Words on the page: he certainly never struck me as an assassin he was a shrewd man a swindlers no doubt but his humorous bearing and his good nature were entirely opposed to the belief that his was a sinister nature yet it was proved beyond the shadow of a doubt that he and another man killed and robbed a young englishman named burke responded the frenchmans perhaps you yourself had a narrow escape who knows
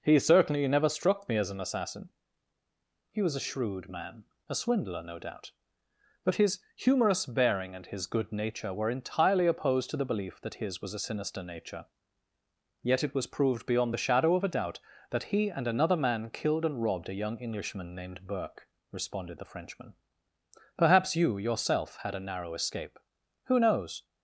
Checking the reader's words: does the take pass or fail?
fail